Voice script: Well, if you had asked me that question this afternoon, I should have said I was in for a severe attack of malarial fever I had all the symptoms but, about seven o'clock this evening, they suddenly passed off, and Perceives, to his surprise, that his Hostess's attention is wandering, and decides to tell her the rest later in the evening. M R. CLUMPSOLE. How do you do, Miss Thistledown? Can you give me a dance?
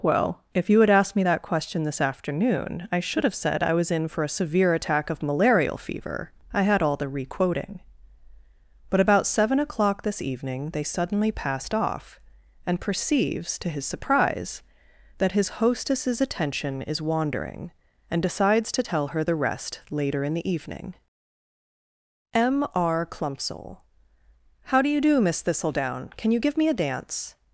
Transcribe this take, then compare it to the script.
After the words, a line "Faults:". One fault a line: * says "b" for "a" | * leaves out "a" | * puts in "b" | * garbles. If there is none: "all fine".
Well, if you had asked me that question this afternoon, I should have said I was in for a severe attack of malarial fever I had all the requoting but, about seven o'clock this evening, they suddenly passed off, and Perceives, to his surprise, that his Hostess's attention is wandering, and decides to tell her the rest later in the evening. M R. CLUMPSOLE. How do you do, Miss Thistledown? Can you give me a dance?
Faults:
* says "requoting" for "symptoms"